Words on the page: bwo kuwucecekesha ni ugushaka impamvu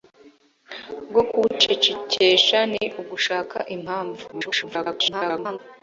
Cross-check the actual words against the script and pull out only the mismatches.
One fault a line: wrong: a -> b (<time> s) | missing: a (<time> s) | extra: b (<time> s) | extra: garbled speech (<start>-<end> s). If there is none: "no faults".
extra: garbled speech (4.3-5.6 s)